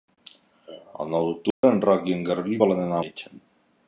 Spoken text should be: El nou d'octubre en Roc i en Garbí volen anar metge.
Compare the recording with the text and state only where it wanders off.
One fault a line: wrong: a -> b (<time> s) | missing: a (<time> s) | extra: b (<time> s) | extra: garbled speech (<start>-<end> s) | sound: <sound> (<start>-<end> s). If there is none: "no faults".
sound: dropout (1.5-1.6 s)